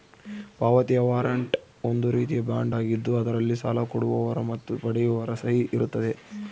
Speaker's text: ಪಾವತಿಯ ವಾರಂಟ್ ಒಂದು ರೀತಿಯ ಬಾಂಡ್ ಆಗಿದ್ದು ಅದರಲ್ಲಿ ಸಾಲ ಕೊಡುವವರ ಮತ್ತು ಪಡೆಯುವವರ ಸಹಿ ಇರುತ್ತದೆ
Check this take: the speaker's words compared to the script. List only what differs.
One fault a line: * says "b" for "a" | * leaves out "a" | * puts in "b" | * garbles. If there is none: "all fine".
all fine